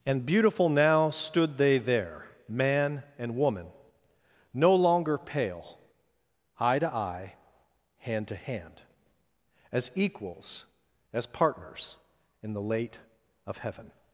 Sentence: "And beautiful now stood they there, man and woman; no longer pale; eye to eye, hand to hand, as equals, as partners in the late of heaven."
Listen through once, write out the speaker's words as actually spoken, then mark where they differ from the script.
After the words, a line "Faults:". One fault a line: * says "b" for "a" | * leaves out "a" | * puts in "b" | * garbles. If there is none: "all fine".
"And beautiful now stood they there, man and woman; no longer pale; eye to eye, hand to hand, as equals, as partners in the late of heaven."
Faults:
all fine